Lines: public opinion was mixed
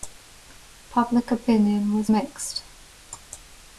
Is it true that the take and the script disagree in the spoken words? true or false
false